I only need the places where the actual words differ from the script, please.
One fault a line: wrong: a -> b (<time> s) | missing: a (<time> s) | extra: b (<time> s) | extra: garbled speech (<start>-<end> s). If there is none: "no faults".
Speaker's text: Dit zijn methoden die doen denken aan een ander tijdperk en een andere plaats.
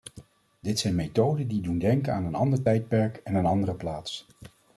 no faults